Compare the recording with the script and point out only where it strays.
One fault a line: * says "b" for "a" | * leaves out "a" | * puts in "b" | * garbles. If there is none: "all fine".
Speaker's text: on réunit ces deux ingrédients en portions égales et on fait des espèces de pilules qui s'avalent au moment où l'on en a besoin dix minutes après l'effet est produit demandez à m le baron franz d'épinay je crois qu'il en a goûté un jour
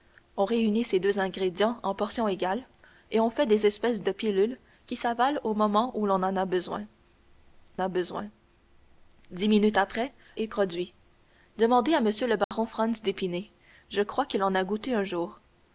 * puts in "a besoin"
* leaves out "l'effet"